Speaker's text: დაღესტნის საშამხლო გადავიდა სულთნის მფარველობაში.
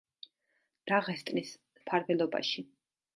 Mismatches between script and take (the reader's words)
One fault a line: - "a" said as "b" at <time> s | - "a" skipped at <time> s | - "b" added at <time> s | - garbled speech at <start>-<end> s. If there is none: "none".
- "საშამხლო გადავიდა სულთნის" skipped at 1.5 s